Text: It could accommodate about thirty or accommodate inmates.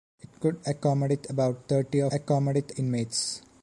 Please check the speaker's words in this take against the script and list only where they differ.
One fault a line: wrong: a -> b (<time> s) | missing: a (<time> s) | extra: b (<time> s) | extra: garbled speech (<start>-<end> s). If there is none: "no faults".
no faults